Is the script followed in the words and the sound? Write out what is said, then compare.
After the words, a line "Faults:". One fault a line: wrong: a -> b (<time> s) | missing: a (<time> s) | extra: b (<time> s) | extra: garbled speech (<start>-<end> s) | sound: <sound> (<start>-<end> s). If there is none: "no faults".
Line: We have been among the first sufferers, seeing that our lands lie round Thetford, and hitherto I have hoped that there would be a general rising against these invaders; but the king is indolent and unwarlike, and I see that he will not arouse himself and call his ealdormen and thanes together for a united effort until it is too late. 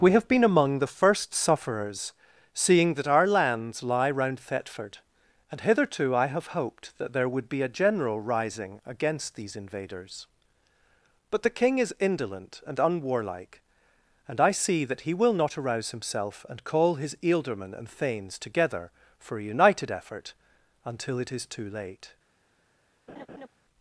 We have been among the first sufferers, seeing that our lands lie round Thetford, and hitherto I have hoped that there would be a general rising against these invaders; but the king is indolent and unwarlike, and I see that he will not arouse himself and call his ealdormen and thanes together for a united effort until it is too late.
Faults:
sound: laugh (23.1-23.5 s)